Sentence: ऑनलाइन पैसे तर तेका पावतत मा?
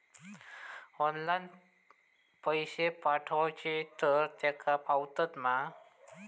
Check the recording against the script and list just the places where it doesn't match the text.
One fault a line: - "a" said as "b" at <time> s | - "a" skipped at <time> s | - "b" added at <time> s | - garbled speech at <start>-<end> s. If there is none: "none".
- "पाठवचे" added at 3.0 s